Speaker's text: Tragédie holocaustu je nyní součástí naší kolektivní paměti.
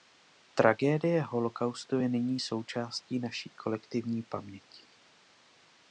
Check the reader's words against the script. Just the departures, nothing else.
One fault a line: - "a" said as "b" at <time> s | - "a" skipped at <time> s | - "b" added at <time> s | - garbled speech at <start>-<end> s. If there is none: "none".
none